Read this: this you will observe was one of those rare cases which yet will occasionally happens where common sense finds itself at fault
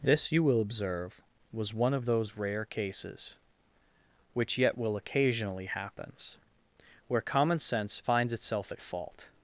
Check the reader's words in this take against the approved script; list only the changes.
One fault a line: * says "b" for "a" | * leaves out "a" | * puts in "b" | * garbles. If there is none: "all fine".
all fine